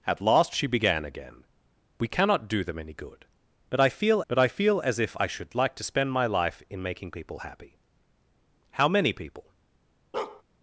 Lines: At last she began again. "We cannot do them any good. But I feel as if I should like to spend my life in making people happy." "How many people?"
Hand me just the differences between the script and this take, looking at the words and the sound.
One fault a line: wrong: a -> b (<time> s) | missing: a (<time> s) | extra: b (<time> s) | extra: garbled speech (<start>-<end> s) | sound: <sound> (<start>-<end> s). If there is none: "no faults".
extra: but I feel (4.3 s)
sound: bark (10.1-10.4 s)